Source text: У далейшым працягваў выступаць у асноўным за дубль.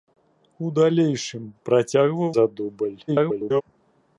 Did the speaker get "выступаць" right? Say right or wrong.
wrong